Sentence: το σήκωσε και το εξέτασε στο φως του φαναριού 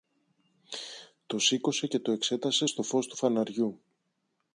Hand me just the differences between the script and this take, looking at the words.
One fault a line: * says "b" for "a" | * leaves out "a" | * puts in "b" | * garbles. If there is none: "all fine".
all fine